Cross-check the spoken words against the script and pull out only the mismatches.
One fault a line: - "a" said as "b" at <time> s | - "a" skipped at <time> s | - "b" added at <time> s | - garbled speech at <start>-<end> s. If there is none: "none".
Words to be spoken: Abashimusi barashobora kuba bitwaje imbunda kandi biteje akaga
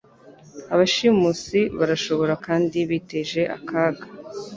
- "kuba bitwaje imbunda" skipped at 2.3 s